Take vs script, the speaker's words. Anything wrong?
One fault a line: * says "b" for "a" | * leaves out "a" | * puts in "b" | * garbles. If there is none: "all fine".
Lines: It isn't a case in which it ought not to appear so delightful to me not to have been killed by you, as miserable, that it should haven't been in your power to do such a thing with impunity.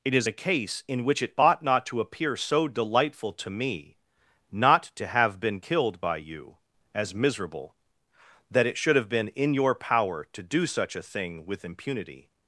* says "is" for "isn't"
* says "have" for "haven't"